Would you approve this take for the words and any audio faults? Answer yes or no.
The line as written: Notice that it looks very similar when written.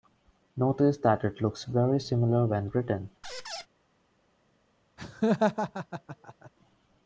no